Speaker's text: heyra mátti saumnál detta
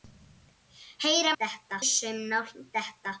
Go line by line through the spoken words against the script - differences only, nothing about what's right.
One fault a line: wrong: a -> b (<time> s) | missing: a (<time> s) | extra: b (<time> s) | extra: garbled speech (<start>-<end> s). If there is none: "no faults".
wrong: mátti -> detta (1.4 s)